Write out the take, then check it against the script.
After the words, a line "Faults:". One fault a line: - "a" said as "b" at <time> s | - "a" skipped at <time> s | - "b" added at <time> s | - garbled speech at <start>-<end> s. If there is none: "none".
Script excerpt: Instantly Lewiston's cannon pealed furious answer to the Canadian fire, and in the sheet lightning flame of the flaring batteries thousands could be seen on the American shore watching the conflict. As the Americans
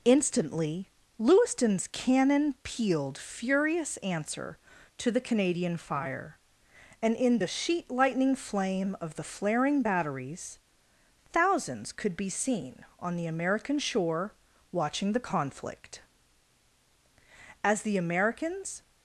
Instantly Lewiston's cannon pealed furious answer to the Canadian fire, and in the sheet lightning flame of the flaring batteries thousands could be seen on the American shore watching the conflict. As the Americans
Faults:
none